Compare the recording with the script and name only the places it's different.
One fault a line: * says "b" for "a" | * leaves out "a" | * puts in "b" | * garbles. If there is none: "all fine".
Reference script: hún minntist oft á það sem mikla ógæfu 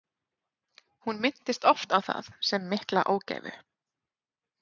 all fine